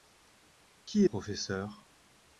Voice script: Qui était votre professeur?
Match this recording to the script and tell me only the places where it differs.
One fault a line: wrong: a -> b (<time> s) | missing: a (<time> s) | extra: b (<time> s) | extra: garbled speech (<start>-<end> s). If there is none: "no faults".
missing: était votre (1.1 s)